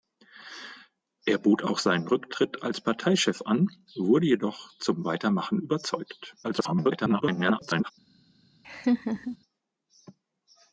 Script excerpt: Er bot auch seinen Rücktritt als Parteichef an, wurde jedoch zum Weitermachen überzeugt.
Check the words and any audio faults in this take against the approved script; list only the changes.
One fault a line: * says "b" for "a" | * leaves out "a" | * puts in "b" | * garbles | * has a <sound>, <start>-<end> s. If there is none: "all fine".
* garbles
* has a laugh, 8.6-9.4 s